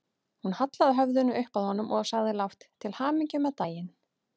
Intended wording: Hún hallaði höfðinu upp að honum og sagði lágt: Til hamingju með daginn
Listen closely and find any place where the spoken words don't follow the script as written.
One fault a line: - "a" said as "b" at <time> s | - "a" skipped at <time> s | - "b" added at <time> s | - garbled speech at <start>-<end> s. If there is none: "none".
none